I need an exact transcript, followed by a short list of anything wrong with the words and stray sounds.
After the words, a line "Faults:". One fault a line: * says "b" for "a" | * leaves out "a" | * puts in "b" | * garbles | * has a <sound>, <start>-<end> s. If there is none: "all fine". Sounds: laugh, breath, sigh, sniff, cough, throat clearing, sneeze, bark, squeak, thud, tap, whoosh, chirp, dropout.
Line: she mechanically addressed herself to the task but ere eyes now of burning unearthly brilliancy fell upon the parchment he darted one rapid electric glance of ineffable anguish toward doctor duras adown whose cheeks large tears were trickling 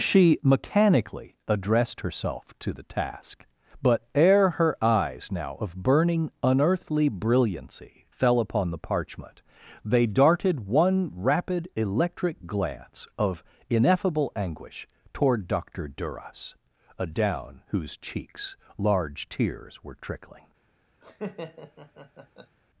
she mechanically addressed herself to the task but ere her eyes now of burning unearthly brilliancy fell upon the parchment they darted one rapid electric glance of ineffable anguish toward doctor duras adown whose cheeks large tears were trickling
Faults:
* puts in "her"
* says "they" for "he"
* has a laugh, 21.0-22.6 s